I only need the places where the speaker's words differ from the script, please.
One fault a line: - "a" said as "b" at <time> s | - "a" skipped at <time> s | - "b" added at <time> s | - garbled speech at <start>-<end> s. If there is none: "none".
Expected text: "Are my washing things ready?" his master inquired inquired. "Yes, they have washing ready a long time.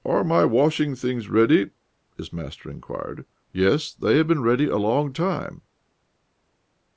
- "inquired" skipped at 3.2 s
- "washing" said as "been" at 4.3 s